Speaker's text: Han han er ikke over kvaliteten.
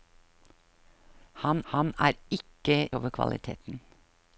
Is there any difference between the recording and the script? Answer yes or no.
no